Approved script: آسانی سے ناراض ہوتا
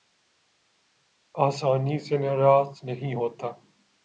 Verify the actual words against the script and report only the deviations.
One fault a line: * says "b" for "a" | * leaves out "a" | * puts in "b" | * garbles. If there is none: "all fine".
* puts in "نہیں"